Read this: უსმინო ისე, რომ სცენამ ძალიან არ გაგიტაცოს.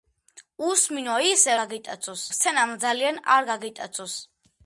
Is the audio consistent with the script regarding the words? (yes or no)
no